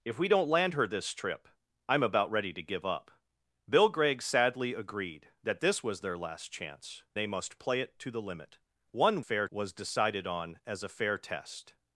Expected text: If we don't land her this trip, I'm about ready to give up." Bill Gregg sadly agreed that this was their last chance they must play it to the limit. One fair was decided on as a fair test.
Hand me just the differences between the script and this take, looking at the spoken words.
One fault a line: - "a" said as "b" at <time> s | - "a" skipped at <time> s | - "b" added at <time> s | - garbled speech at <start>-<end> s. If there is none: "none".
none